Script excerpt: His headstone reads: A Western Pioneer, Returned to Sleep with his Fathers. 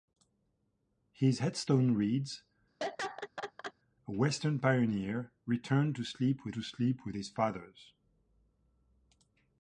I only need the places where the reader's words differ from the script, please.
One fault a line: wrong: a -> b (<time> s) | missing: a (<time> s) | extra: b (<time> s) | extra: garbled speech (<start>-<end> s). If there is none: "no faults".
extra: to Sleep with (6.5 s)